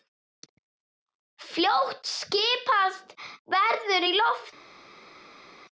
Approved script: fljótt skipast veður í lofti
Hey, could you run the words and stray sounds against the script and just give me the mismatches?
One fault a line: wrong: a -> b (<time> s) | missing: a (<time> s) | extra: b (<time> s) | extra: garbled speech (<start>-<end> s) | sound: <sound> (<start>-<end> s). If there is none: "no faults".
no faults